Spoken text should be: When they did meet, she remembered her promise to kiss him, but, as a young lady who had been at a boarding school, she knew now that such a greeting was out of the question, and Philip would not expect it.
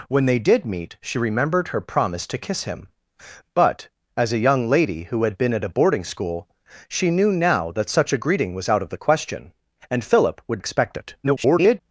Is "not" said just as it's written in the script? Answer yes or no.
no